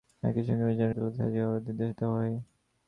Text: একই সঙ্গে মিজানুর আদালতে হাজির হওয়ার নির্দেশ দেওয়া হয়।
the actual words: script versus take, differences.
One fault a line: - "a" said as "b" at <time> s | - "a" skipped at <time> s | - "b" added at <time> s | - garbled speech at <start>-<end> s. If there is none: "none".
none